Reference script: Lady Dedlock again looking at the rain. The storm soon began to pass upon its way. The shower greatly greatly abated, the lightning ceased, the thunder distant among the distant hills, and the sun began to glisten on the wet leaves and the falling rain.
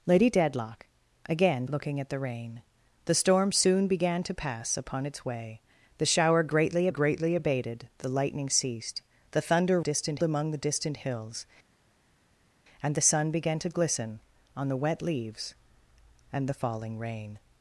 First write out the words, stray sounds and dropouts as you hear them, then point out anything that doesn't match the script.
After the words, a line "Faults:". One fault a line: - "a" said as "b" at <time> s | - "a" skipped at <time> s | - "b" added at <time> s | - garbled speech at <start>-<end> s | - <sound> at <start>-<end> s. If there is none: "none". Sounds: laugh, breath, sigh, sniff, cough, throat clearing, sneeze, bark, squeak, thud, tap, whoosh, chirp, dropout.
Lady Dedlock again looking at the rain. The storm soon began to pass upon its way. The shower greatly greatly abated, the lightning ceased, the thunder distant among the distant hills, and the sun began to glisten on the wet leaves and the falling rain.
Faults:
none